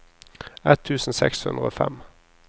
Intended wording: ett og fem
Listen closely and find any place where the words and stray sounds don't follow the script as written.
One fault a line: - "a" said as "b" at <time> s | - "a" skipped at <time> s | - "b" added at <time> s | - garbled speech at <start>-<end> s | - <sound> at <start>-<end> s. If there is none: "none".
- "tusen seks hundre" added at 0.9 s